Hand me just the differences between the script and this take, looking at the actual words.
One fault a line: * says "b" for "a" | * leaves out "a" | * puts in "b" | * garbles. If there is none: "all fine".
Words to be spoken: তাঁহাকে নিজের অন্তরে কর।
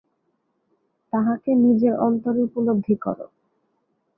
* puts in "উপলব্ধি"